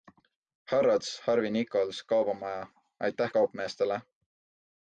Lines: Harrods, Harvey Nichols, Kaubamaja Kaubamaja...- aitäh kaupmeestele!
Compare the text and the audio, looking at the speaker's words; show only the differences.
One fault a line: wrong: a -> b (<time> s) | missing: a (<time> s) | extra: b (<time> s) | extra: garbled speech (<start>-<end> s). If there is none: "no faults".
missing: Kaubamaja (2.7 s)